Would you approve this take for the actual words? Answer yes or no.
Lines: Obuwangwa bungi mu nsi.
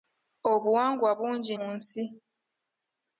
yes